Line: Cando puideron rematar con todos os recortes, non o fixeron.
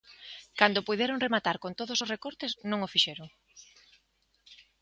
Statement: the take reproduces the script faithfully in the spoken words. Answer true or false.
true